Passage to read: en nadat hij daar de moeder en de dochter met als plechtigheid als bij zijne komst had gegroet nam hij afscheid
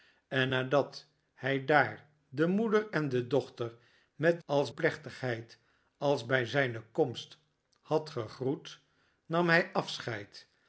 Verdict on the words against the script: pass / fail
pass